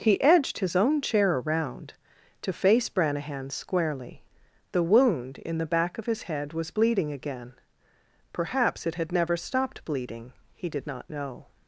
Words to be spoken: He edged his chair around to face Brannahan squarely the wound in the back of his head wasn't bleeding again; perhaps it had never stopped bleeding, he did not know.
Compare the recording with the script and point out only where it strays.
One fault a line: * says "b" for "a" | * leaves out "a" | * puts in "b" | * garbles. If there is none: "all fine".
* puts in "own"
* says "was" for "wasn't"